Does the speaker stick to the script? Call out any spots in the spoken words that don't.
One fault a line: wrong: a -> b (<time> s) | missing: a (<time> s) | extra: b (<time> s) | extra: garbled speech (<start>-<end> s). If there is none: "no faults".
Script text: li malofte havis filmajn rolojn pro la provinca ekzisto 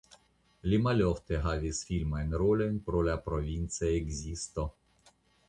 no faults